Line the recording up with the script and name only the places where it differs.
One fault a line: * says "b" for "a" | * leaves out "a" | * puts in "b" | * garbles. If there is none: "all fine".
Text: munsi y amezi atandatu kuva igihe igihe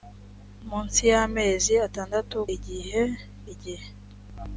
* leaves out "kuva"